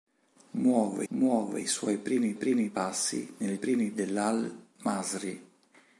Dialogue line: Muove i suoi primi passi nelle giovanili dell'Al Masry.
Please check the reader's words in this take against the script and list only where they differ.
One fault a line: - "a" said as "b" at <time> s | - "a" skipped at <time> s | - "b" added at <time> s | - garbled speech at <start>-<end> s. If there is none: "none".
- "muove" added at 1.1 s
- "primi" added at 2.3 s
- "giovanili" said as "primi" at 3.5 s